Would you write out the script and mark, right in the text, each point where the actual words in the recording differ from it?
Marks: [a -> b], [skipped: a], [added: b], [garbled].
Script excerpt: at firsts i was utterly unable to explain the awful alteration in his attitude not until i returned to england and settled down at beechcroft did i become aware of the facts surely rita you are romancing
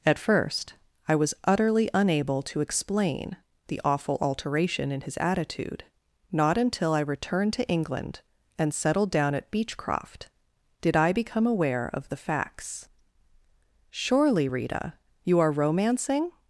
at [firsts -> first] i was utterly unable to explain the awful alteration in his attitude not until i returned to england and settled down at beechcroft did i become aware of the facts surely rita you are romancing